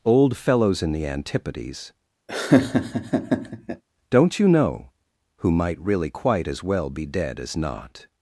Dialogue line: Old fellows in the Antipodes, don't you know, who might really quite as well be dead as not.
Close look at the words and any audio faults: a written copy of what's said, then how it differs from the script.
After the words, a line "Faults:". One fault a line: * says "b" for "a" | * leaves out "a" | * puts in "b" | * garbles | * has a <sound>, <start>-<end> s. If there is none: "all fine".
Old fellows in the Antipodes, don't you know, who might really quite as well be dead as not.
Faults:
* has a laugh, 2.3-3.8 s